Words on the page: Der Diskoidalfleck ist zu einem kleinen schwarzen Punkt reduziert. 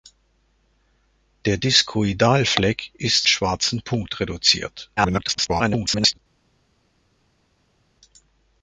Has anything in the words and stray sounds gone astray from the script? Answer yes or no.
yes